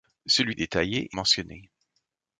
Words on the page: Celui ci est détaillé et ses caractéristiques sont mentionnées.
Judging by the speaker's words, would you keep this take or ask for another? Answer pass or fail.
fail